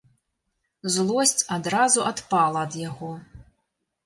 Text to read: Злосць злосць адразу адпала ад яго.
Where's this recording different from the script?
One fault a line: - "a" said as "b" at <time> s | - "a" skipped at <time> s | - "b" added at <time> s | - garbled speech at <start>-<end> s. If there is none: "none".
- "злосць" skipped at 1.4 s